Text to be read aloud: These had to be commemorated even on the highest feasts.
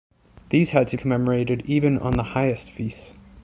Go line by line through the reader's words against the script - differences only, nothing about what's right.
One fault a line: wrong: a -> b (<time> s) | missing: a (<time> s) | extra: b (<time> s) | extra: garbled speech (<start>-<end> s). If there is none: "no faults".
missing: be (1.0 s)